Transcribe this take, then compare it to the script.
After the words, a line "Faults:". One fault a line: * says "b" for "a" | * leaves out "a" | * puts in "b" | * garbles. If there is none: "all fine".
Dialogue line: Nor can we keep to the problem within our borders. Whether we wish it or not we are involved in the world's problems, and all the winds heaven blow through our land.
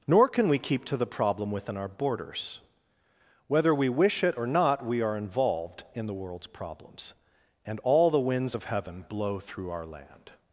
Nor can we keep to the problem within our borders. Whether we wish it or not we are involved in the world's problems, and all the winds of heaven blow through our land.
Faults:
* puts in "of"